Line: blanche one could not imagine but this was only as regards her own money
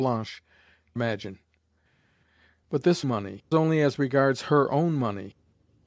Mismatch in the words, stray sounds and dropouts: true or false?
true